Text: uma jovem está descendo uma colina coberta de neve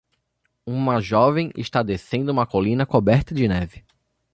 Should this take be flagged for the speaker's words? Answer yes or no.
no